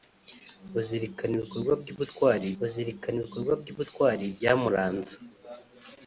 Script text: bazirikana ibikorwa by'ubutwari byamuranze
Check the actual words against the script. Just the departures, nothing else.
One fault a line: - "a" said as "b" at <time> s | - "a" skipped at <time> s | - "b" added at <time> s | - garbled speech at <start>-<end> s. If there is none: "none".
- "bazirikana ibikorwa by'ubutwari" added at 2.6 s